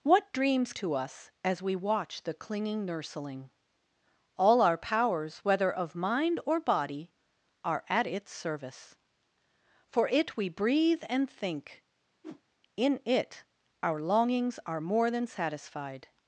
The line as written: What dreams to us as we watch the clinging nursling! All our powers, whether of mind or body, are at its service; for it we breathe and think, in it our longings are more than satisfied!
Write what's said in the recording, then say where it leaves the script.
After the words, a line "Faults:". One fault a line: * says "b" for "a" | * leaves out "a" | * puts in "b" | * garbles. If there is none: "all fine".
What dreams to us as we watch the clinging nursling! All our powers, whether of mind or body, are at its service; for it we breathe and think, in it our longings are more than satisfied!
Faults:
all fine